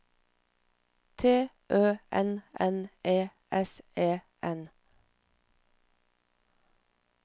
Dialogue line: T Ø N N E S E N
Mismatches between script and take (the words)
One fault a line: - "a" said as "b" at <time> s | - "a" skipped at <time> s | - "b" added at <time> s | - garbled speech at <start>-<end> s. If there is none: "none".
none